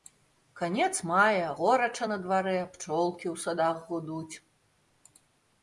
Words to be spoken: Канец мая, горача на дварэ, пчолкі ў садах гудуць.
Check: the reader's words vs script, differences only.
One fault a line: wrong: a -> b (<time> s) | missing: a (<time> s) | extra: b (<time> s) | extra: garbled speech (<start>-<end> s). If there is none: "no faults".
no faults